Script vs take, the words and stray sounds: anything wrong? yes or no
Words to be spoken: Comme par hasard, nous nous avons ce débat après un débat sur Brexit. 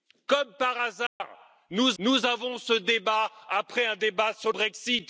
yes